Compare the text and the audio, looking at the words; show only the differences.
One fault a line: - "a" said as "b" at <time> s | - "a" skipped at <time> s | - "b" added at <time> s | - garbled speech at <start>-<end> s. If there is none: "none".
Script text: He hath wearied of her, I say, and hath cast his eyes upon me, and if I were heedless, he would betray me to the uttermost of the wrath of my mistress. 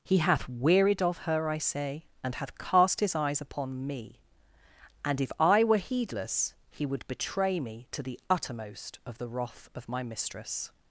none